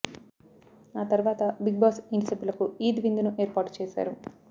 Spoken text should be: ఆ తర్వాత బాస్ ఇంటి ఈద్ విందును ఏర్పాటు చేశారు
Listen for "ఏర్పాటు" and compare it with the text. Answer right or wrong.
right